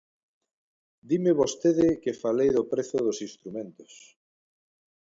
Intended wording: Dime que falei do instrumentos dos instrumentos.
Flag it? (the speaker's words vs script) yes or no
yes